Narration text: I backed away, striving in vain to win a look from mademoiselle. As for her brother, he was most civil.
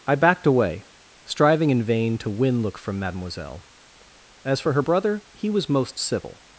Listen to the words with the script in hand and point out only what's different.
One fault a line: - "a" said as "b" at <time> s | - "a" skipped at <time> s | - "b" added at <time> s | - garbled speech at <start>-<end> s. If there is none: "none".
- "a" skipped at 2.6 s